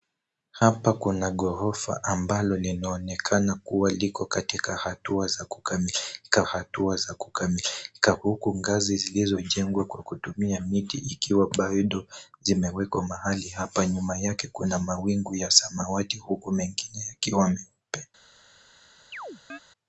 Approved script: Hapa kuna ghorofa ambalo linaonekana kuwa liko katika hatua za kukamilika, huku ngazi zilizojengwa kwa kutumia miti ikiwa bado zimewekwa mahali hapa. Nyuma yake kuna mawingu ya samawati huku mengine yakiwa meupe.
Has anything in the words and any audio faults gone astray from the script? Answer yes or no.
yes